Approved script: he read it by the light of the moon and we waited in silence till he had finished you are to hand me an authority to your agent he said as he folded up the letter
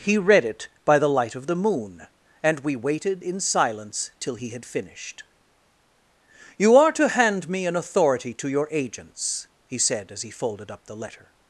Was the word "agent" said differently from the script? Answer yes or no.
yes